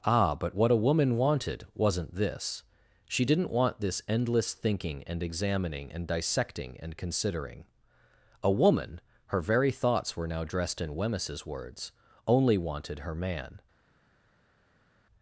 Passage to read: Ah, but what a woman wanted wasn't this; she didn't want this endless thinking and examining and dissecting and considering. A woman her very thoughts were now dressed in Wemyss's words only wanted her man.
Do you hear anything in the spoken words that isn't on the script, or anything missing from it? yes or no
no